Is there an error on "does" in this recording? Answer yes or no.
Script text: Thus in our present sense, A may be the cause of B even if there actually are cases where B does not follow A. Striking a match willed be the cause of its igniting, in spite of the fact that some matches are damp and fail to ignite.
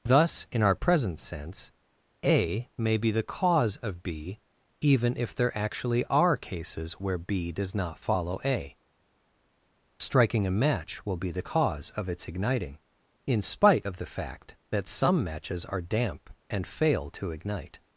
no